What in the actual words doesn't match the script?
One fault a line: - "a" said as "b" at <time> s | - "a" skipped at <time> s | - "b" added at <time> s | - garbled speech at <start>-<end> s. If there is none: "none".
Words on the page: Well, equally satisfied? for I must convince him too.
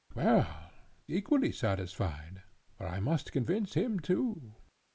none